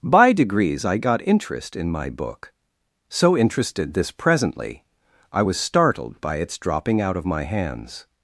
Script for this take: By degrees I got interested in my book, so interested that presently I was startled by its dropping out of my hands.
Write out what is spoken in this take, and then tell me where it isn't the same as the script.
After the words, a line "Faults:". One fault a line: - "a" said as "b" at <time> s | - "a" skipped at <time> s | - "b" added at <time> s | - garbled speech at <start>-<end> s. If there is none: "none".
By degrees I got interest in my book, so interested this presently I was startled by its dropping out of my hands.
Faults:
- "interested" said as "interest" at 1.3 s
- "that" said as "this" at 3.9 s